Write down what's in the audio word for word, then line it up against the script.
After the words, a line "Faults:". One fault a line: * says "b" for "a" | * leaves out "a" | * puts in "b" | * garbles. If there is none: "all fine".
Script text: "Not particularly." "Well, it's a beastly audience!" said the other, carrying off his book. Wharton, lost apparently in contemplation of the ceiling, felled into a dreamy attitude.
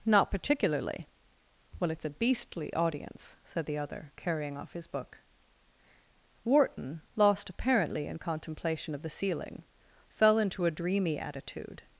"Not particularly." "Well, it's a beastly audience!" said the other, carrying off his book. Wharton, lost apparently in contemplation of the ceiling, fell into a dreamy attitude.
Faults:
* says "fell" for "felled"